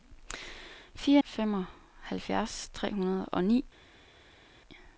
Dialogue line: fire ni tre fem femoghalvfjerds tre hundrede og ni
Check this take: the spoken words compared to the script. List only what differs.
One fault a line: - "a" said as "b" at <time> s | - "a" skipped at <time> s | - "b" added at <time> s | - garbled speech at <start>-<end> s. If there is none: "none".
- "ni tre fem" skipped at 1.2 s